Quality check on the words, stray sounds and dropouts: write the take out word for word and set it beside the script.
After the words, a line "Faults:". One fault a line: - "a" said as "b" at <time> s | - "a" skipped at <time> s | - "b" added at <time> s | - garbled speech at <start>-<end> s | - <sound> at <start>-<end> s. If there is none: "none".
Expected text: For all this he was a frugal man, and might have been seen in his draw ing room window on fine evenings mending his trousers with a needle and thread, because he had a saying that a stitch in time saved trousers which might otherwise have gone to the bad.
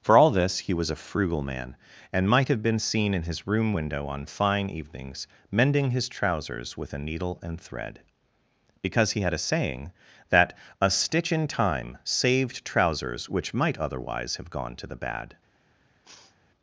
For all this he was a frugal man, and might have been seen in his room window on fine evenings mending his trousers with a needle and thread, because he had a saying that a stitch in time saved trousers which might otherwise have gone to the bad.
Faults:
- "draw ing" skipped at 3.5 s
- sniff at 16.0-16.4 s